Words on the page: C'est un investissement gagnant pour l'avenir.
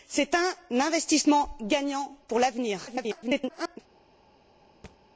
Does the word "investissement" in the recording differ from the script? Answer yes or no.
no